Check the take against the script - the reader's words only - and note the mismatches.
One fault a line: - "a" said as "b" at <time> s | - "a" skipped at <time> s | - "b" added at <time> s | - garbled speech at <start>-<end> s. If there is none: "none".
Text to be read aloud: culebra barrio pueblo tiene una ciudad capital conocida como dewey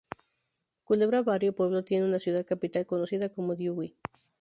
none